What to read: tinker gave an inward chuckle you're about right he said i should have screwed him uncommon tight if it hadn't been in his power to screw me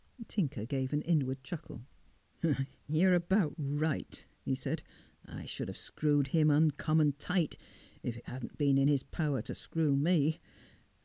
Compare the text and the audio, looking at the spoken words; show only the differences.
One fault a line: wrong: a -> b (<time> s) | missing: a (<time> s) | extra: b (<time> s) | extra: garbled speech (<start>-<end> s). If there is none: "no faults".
no faults